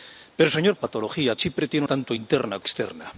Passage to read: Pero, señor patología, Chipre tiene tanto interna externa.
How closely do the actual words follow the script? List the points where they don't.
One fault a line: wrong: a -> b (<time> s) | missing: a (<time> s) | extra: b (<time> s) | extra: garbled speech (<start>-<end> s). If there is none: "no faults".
no faults